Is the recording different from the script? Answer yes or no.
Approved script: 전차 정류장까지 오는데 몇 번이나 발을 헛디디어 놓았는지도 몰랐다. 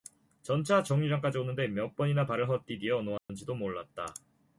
no